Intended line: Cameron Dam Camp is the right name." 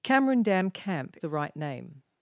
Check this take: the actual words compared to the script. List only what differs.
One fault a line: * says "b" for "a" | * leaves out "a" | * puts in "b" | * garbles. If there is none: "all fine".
* leaves out "is"